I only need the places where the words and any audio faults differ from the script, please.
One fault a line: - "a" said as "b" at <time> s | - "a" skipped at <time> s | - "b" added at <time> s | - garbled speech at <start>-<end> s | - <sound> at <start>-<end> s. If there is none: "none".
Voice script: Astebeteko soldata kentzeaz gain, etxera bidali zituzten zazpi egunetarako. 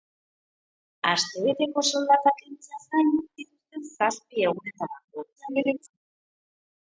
- "etxera bidali" skipped at 3.1 s
- garbled speech at 5.4-6.0 s